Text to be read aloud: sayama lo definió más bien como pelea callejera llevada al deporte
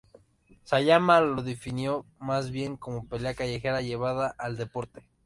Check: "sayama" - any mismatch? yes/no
no